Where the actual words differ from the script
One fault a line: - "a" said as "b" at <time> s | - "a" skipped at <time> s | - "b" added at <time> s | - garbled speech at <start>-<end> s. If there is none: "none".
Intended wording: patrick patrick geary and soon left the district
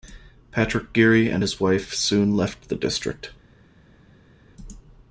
- "patrick" skipped at 0.9 s
- "his wife" added at 1.4 s